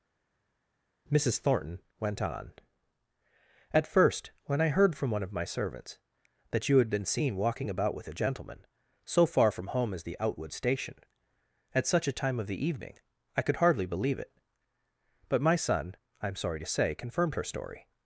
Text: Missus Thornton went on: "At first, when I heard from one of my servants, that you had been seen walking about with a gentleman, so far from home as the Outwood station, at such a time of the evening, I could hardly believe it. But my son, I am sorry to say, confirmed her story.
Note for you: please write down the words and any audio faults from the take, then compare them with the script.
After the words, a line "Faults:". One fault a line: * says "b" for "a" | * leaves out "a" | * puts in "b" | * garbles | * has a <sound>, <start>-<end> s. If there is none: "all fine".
Missus Thornton went on: "At first, when I heard from one of my servants, that you had been seen walking about with a gentleman, so far from home as the Outwood station, at such a time of the evening, I could hardly believe it. But my son, I am sorry to say, confirmed her story.
Faults:
all fine